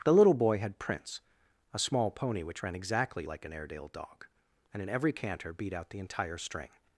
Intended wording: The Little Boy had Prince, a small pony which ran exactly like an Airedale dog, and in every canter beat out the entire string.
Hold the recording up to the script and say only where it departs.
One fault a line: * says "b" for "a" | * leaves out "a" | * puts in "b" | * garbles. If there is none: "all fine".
all fine